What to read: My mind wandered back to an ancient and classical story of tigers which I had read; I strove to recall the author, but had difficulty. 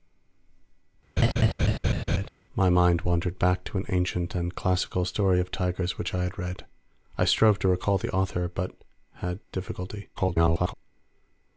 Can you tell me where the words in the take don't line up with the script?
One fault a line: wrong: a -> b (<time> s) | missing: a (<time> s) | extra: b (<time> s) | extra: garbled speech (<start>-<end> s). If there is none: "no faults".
extra: garbled speech (10.2-10.7 s)